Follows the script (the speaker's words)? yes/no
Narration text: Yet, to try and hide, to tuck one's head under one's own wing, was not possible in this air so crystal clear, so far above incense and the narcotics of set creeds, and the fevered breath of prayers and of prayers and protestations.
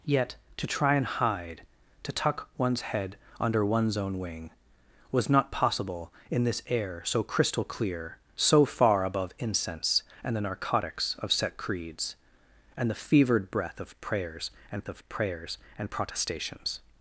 yes